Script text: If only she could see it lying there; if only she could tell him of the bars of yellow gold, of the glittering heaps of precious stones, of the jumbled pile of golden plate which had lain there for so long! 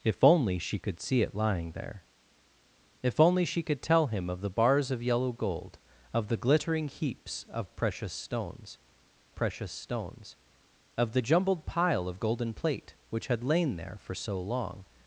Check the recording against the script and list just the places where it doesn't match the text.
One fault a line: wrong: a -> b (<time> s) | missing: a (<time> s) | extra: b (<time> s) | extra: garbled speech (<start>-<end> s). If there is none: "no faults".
extra: precious stones (9.3 s)